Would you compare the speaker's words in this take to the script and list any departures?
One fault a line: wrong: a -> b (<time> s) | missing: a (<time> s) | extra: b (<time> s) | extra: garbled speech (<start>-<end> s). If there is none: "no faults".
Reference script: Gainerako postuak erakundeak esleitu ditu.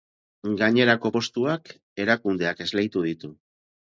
no faults